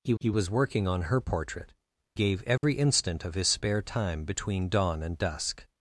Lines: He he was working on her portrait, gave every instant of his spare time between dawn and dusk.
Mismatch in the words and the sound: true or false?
true